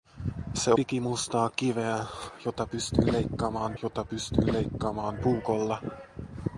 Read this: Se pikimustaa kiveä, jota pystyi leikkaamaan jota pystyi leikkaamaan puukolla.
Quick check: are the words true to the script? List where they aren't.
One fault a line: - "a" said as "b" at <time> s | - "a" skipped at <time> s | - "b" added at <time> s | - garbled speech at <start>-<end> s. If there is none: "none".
none